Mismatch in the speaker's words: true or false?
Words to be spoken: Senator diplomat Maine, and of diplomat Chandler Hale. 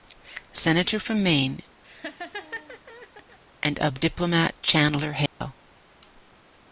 true